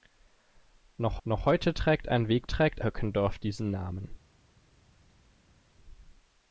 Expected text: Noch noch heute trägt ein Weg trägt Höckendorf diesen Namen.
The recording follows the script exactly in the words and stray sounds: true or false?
true